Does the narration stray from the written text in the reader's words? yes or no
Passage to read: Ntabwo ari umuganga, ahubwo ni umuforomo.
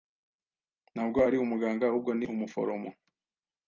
no